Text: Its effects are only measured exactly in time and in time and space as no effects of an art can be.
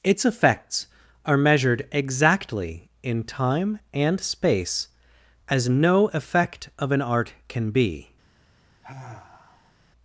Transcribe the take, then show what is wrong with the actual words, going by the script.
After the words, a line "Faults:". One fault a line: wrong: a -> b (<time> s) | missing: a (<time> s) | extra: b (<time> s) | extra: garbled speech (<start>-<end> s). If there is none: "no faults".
Its effects are measured exactly in time and space as no effect of an art can be.
Faults:
missing: only (1.4 s)
missing: in time and (4.2 s)
wrong: effects -> effect (6.1 s)